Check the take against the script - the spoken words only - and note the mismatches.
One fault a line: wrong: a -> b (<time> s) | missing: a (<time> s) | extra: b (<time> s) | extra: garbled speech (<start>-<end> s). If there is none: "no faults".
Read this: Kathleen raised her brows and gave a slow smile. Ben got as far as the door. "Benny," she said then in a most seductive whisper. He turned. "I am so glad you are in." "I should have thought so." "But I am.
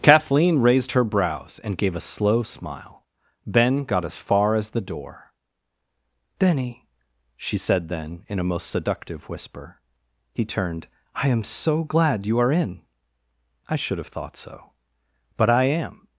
no faults